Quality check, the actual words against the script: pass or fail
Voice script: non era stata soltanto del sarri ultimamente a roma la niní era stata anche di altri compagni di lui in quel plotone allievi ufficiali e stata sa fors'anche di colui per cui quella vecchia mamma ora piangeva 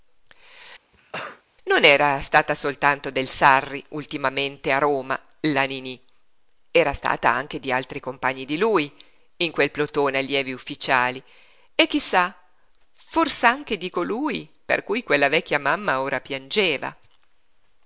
fail